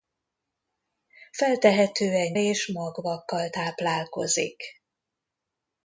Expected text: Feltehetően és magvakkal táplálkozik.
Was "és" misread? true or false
false